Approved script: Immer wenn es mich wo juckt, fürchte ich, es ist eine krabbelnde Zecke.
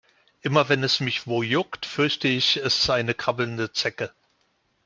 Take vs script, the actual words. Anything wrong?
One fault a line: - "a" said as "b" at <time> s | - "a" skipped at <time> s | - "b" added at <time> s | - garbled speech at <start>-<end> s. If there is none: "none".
none